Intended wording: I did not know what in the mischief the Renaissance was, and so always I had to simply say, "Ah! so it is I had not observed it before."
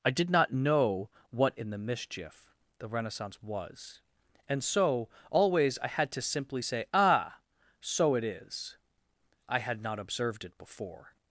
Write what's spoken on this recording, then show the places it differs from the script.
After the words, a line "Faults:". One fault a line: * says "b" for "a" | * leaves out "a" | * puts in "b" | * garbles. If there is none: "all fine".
I did not know what in the mischief the Renaissance was, and so always I had to simply say, "Ah! so it is I had not observed it before."
Faults:
all fine